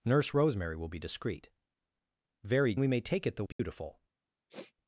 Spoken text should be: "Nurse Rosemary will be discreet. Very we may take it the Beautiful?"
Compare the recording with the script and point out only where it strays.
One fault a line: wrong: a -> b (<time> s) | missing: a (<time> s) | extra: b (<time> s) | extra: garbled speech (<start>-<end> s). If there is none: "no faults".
no faults